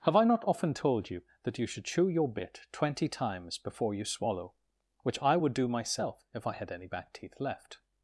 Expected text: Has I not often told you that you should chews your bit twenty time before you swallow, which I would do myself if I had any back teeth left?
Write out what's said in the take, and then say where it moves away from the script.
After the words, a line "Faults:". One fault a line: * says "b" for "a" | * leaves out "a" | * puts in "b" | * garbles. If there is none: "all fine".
Have I not often told you that you should chew your bit twenty times before you swallow, which I would do myself if I had any back teeth left?
Faults:
* says "Have" for "Has"
* says "chew" for "chews"
* says "times" for "time"